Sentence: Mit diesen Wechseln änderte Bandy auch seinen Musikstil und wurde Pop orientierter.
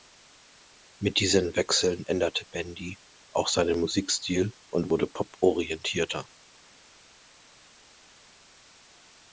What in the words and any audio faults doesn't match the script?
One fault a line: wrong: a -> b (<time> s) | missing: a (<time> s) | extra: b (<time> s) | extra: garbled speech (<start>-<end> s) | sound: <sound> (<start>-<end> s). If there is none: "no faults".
no faults